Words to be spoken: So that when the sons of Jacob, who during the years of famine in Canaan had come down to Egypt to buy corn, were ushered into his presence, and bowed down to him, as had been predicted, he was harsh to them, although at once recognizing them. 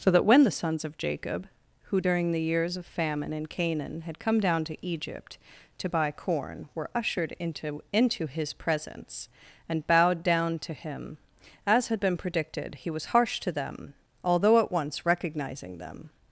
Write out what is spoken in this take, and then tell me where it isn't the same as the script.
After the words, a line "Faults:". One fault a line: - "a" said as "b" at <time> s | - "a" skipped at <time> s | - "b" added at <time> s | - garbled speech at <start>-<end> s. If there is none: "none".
So that when the sons of Jacob, who during the years of famine in Canaan had come down to Egypt to buy corn, were ushered into into his presence, and bowed down to him, as had been predicted, he was harsh to them, although at once recognizing them.
Faults:
- "into" added at 7.9 s